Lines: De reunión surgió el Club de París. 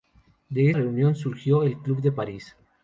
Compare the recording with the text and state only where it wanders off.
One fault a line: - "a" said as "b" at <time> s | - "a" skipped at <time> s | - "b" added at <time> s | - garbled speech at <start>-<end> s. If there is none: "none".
none